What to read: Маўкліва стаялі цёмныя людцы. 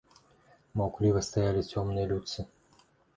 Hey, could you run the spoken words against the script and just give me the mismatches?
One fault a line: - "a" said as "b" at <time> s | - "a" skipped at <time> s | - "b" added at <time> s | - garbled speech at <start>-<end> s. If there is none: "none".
none